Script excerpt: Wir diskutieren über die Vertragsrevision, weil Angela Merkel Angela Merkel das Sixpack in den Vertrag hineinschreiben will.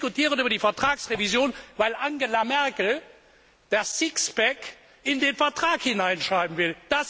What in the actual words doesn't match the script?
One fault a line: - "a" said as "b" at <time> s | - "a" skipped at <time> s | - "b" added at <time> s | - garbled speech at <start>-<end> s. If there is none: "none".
- "Angela Merkel" skipped at 3.0 s